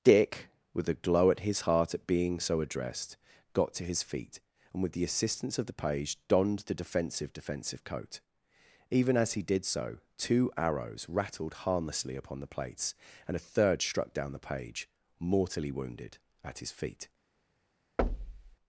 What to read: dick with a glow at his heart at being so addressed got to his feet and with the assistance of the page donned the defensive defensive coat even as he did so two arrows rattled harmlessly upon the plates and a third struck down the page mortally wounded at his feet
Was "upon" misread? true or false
false